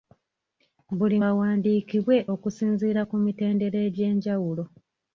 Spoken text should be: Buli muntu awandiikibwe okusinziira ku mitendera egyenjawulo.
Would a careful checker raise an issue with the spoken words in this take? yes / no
yes